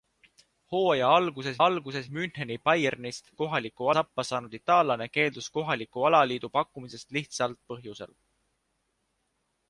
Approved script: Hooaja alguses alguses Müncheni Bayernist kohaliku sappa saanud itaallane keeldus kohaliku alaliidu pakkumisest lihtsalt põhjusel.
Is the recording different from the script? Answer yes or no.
no